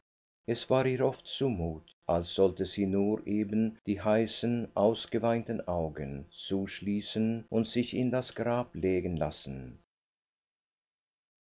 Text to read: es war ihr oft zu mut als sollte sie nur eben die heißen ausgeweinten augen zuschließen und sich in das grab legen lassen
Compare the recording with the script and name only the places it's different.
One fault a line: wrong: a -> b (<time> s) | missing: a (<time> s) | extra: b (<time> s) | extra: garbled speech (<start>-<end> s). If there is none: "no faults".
no faults